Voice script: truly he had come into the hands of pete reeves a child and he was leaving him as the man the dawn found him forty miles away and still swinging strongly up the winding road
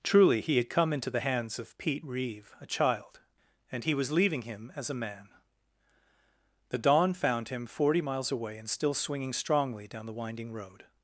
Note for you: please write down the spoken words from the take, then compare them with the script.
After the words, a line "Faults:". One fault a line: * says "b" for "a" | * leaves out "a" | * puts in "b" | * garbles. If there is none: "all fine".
truly he had come into the hands of pete reeve a child and he was leaving him as a man the dawn found him forty miles away and still swinging strongly down the winding road
Faults:
* says "reeve" for "reeves"
* says "a" for "the"
* says "down" for "up"